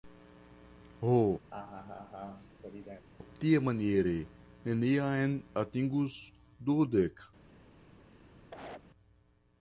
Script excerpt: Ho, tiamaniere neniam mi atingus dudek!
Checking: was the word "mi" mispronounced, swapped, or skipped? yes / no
yes